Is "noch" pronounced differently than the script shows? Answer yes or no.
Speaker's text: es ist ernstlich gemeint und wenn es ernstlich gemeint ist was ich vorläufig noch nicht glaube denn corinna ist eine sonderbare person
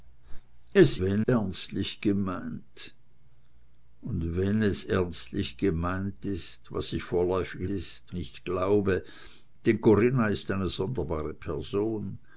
yes